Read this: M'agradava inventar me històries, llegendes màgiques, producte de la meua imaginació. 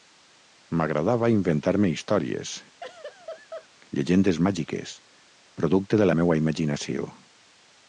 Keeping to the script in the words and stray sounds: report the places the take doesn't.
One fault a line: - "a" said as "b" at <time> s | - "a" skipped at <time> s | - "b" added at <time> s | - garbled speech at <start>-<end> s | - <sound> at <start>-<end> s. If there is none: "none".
- laugh at 2.8-3.7 s